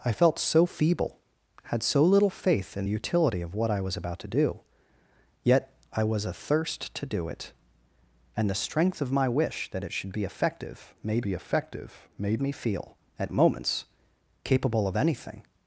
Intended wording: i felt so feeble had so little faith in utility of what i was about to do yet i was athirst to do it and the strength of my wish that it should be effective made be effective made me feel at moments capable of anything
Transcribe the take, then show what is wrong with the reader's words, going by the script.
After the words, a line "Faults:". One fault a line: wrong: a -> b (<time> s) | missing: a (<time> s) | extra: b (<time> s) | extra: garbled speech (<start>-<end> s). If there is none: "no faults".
i felt so feeble had so little faith in utility of what i was about to do yet i was athirst to do it and the strength of my wish that it should be effective made be effective made me feel at moments capable of anything
Faults:
no faults